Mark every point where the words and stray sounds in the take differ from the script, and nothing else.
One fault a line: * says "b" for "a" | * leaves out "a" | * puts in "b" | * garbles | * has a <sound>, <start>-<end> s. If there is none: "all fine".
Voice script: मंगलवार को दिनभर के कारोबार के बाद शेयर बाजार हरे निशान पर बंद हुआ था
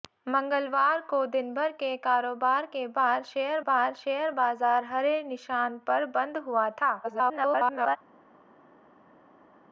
* puts in "बाद शेयर"
* garbles